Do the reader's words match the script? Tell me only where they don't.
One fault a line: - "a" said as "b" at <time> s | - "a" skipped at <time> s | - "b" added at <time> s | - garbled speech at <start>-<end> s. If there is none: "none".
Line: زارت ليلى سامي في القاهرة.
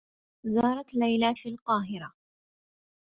- "سامي" skipped at 1.3 s